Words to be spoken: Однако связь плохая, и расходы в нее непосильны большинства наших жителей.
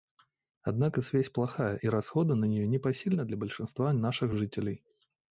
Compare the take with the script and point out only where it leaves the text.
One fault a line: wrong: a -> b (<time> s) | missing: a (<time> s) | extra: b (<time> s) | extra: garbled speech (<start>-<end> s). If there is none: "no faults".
wrong: в -> на (2.3 s)
extra: для (3.3 s)